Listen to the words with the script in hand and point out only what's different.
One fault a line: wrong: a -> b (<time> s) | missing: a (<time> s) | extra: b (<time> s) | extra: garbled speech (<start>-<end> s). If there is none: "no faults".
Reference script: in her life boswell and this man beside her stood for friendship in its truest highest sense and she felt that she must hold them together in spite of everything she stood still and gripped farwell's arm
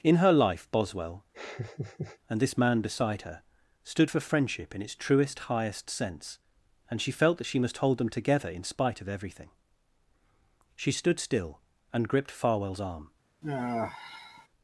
no faults